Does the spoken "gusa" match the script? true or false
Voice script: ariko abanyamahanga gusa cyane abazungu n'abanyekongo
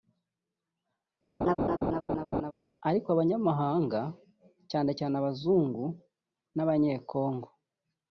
false